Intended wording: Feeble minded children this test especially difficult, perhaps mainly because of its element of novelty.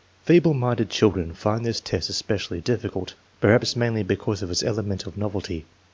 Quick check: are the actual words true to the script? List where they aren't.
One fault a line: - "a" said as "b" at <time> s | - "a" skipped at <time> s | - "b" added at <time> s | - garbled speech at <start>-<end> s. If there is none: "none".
- "find" added at 1.3 s